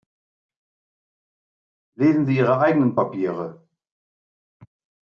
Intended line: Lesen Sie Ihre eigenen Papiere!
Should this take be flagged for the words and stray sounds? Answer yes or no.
no